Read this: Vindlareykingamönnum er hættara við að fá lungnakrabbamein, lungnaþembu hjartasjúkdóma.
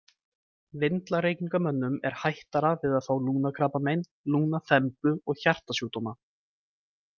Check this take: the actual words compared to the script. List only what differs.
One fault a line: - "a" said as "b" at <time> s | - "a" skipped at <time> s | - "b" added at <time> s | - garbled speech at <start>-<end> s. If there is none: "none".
- "og" added at 5.2 s